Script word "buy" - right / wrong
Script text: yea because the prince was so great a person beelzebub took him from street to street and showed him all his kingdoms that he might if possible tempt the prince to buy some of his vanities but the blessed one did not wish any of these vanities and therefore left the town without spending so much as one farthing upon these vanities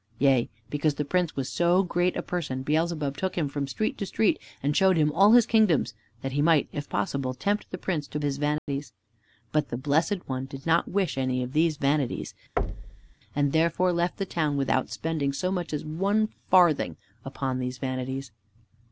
wrong